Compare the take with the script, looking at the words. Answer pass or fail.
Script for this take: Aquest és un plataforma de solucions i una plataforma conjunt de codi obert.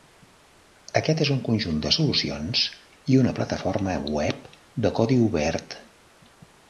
fail